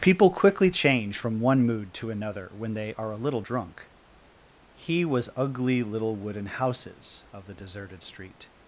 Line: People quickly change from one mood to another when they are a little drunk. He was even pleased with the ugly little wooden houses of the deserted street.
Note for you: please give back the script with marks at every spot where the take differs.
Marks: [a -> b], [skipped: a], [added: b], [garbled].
People quickly change from one mood to another when they are a little drunk. He was [skipped: even pleased with the] ugly little wooden houses of the deserted street.